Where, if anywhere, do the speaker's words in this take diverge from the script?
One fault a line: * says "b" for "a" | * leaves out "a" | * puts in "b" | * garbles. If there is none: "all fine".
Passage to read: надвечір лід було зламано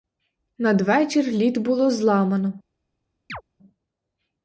all fine